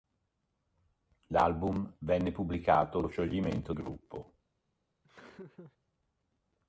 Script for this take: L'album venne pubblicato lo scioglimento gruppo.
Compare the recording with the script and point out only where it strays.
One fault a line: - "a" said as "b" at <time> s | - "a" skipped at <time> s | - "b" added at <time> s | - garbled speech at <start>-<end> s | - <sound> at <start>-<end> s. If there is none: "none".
- laugh at 5.0-5.8 s